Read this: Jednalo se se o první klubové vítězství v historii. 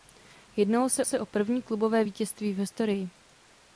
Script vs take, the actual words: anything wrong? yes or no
no